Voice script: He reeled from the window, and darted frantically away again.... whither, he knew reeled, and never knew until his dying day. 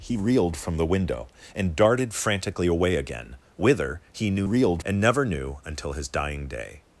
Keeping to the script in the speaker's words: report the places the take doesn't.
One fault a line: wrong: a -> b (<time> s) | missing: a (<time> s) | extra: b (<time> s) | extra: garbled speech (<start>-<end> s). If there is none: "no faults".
no faults